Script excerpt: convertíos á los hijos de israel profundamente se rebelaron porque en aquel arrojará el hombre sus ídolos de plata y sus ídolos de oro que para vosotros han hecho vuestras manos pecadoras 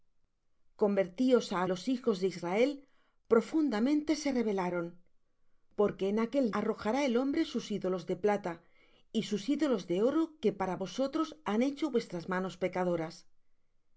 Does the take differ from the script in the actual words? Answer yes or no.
no